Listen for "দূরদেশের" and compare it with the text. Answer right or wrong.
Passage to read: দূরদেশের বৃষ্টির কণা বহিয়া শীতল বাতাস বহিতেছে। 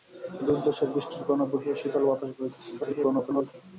right